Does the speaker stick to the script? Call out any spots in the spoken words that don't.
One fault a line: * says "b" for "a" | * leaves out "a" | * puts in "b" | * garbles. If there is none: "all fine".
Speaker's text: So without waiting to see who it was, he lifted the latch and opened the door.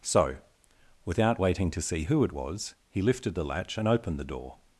all fine